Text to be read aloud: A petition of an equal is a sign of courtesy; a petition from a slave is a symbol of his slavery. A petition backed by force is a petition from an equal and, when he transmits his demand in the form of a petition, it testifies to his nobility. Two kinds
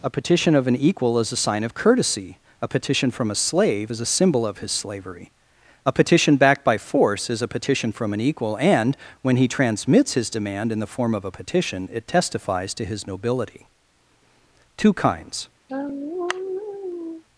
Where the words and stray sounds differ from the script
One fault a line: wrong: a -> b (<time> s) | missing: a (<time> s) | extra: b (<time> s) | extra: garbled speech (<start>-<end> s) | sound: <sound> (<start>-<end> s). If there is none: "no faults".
sound: sigh (15.7-17.2 s)